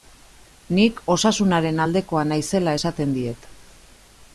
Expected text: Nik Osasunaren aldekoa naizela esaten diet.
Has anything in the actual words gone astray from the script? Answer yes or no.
no